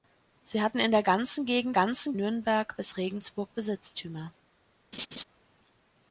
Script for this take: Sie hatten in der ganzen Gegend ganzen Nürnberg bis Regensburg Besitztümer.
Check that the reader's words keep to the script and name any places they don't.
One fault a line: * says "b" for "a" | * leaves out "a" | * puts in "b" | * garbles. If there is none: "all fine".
all fine